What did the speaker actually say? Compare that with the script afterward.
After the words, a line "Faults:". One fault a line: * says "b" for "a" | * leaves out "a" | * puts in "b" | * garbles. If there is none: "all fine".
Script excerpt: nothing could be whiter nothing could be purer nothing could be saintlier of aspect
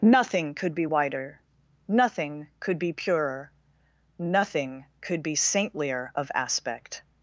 nothing could be whiter nothing could be purer nothing could be saintlier of aspect
Faults:
all fine